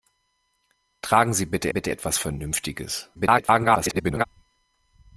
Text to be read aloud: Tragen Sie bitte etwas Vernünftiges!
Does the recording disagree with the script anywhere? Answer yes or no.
yes